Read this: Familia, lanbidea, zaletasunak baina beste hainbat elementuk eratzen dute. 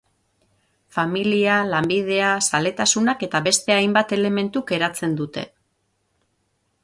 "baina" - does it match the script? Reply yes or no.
no